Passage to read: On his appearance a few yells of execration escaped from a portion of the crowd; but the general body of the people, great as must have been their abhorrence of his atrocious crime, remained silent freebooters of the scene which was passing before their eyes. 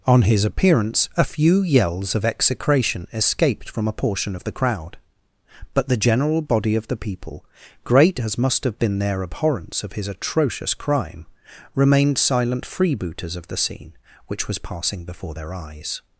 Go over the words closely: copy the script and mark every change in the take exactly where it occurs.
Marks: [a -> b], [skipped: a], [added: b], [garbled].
On his appearance a few yells of execration escaped from a portion of the crowd; but the general body of the people, great as must have been their abhorrence of his atrocious crime, remained silent freebooters of the scene which was passing before their eyes.